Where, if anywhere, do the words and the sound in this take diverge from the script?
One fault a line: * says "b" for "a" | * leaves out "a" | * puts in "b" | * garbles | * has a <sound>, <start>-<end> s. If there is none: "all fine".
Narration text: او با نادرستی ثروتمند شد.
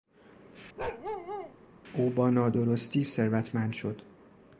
* has a bark, 0.8-1.5 s